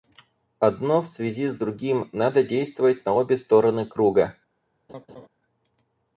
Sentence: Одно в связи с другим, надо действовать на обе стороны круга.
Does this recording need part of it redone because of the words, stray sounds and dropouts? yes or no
yes